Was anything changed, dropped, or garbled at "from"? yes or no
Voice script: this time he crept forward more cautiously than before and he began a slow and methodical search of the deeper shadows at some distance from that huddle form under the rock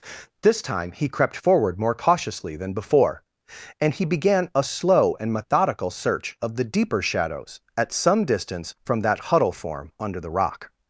no